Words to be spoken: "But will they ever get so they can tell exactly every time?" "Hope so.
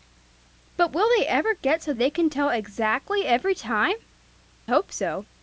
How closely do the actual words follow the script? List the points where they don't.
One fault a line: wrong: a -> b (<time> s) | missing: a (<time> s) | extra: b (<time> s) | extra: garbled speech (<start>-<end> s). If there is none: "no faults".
no faults